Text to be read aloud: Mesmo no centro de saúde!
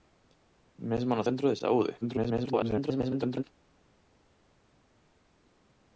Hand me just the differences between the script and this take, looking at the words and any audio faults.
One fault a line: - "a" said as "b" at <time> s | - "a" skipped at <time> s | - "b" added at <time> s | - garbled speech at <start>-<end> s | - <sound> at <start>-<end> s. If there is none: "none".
- garbled speech at 2.0-3.4 s